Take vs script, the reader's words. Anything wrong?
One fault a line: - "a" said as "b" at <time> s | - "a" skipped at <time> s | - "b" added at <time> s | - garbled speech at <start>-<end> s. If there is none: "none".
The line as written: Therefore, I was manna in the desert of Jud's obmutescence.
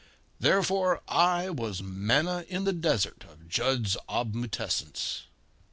none